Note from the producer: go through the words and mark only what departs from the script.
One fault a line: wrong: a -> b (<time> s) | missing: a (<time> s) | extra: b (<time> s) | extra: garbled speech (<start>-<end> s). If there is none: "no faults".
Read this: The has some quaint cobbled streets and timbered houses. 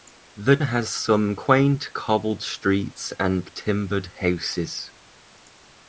no faults